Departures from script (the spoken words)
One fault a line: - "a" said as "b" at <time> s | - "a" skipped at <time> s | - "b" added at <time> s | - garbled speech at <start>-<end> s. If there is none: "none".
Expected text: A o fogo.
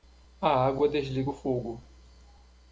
- "água desliga" added at 0.7 s